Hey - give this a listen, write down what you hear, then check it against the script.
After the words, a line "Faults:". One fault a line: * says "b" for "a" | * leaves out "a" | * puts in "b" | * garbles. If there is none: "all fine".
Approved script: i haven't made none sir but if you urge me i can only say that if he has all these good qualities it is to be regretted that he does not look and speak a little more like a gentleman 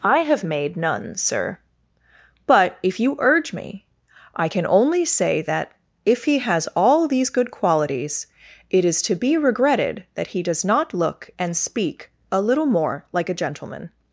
i have made none sir but if you urge me i can only say that if he has all these good qualities it is to be regretted that he does not look and speak a little more like a gentleman
Faults:
* says "have" for "haven't"